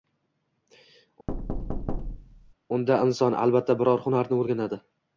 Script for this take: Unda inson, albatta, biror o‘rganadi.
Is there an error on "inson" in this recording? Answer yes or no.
no